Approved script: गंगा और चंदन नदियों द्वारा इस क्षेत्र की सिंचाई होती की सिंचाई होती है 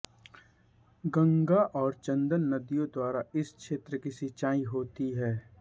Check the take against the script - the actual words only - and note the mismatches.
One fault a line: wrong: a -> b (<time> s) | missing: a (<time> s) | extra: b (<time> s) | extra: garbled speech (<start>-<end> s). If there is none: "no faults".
missing: की सिंचाई होती (5.1 s)